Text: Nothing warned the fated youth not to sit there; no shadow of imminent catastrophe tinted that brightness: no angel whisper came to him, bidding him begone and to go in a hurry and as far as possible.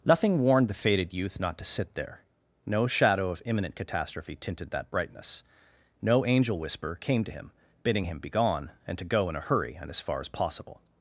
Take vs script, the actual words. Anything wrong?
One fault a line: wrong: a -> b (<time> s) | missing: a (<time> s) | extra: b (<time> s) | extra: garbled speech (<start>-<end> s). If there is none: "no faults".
no faults